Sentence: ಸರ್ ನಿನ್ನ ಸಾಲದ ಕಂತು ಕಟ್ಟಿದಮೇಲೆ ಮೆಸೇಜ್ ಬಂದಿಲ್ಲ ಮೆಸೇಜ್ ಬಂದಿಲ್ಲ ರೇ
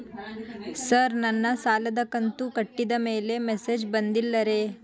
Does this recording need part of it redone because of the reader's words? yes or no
yes